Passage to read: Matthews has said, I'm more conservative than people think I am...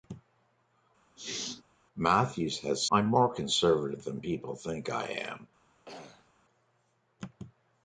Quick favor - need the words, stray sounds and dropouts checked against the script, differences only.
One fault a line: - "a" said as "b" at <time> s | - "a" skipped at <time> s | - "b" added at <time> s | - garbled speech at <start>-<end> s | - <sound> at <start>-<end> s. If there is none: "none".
- sneeze at 1.2-1.6 s
- "said" skipped at 2.9 s
- throat clearing at 5.9-6.3 s